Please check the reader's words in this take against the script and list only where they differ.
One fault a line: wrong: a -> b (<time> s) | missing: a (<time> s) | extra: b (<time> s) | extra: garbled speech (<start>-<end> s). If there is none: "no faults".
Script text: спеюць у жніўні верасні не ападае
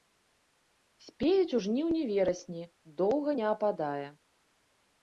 extra: доўга (3.0 s)